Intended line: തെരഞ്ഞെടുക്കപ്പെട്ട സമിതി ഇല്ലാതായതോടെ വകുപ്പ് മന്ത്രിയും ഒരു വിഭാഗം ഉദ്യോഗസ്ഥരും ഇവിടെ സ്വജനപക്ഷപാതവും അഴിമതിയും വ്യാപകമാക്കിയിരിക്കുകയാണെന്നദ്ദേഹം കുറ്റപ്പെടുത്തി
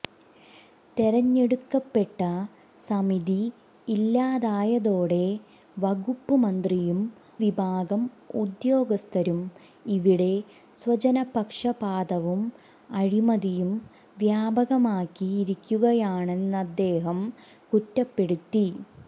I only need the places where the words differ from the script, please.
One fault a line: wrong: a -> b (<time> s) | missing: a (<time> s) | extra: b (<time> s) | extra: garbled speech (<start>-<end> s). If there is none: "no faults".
missing: ഒരു (7.0 s)